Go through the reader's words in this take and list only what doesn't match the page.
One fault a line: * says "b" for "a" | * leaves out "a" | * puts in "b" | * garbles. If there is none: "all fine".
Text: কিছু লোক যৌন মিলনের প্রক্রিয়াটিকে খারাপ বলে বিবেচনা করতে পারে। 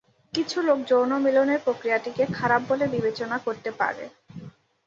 all fine